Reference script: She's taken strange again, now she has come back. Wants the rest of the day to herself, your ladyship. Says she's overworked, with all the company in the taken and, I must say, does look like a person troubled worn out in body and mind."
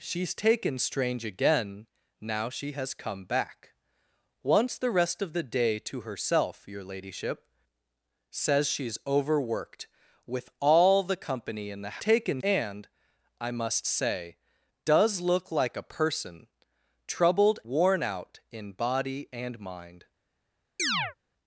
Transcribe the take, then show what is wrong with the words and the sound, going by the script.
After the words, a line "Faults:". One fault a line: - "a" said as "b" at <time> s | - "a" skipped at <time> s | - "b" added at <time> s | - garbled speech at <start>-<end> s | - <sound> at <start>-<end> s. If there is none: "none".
She's taken strange again, now she has come back. Wants the rest of the day to herself, your ladyship. Says she's overworked, with all the company in the taken and, I must say, does look like a person troubled worn out in body and mind."
Faults:
- chirp at 20.8-21.1 s